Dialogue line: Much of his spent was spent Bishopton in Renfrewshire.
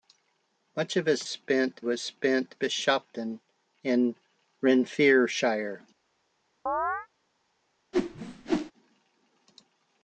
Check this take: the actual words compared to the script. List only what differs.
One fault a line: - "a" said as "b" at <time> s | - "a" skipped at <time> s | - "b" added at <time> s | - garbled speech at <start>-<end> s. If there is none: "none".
none